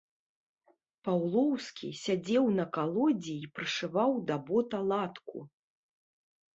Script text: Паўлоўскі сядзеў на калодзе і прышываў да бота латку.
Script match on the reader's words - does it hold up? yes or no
yes